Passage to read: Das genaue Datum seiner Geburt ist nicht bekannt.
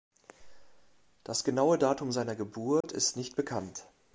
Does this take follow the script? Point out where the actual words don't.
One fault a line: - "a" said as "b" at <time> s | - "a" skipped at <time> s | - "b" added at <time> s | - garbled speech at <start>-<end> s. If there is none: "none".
none